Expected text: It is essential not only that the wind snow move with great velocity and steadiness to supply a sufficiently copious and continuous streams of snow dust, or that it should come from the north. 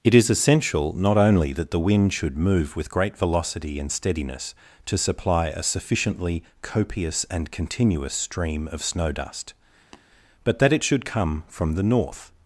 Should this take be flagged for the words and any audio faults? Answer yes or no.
yes